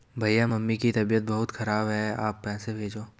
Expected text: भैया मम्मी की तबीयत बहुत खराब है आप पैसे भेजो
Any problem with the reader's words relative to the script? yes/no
no